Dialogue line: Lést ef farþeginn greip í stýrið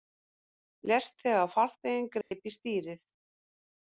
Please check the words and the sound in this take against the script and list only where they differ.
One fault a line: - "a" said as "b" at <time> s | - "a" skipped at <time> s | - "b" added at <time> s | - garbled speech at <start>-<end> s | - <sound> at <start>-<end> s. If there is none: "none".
- "ef" said as "þegar" at 1.2 s
- dropout at 2.2-2.3 s